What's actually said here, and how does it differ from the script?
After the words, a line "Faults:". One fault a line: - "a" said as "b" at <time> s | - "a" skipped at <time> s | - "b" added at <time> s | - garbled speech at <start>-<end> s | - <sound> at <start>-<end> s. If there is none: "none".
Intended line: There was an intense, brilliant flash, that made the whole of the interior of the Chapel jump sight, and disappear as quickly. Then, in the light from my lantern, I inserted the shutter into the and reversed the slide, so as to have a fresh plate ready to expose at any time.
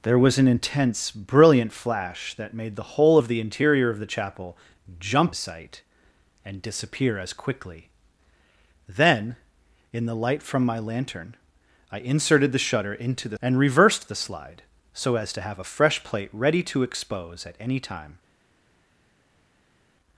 There was an intense, brilliant flash, that made the whole of the interior of the Chapel jump sight, and disappear as quickly. Then, in the light from my lantern, I inserted the shutter into the and reversed the slide, so as to have a fresh plate ready to expose at any time.
Faults:
none